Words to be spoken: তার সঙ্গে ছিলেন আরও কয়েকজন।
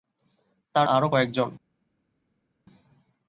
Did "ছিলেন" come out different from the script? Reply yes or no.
yes